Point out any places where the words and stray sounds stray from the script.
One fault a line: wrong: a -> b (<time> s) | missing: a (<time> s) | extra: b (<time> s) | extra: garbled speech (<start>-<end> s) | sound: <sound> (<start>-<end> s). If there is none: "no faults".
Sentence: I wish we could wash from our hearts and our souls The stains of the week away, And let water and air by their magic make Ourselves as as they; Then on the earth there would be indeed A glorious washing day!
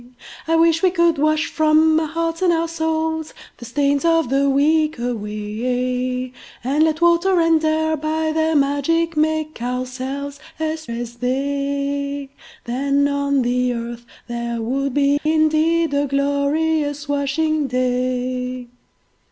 sound: dropout (15.2-15.3 s)